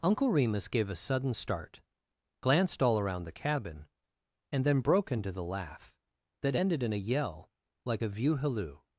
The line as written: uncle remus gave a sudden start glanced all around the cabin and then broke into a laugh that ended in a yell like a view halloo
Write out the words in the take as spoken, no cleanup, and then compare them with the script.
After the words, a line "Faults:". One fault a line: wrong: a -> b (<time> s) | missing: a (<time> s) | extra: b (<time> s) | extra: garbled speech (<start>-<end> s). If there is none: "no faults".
uncle remus gave a sudden start glanced all around the cabin and then broke into the laugh that ended in a yell like a view halloo
Faults:
wrong: a -> the (5.3 s)